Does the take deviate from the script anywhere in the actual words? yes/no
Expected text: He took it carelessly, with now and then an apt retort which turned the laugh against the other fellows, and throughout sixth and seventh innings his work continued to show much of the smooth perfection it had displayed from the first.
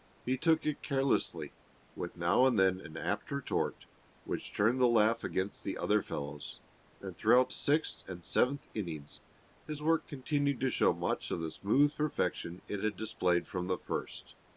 no